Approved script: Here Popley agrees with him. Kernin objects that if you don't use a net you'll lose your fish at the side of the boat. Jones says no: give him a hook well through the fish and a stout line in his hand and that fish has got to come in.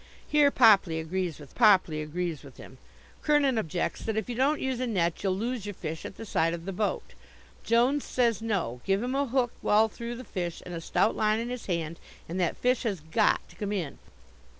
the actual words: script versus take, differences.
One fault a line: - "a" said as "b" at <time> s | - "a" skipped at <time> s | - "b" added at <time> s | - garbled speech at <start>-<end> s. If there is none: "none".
- "Popley agrees with" added at 1.5 s